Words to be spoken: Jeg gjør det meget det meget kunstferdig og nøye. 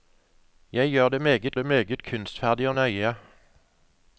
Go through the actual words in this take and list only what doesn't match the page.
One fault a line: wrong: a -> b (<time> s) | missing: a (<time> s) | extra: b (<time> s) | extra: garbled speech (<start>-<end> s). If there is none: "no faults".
no faults